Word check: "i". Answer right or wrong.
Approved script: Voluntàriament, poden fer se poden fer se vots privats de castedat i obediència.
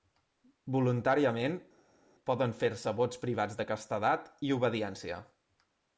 right